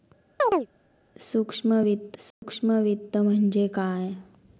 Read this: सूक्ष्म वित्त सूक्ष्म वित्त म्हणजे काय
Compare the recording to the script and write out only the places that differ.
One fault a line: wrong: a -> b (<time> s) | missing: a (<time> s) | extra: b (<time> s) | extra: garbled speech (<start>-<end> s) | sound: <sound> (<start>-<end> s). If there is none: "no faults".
sound: chirp (0.4-0.7 s)
sound: dropout (2.3-2.4 s)